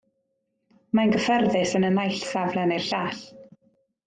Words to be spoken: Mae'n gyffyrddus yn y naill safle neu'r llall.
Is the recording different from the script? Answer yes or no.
no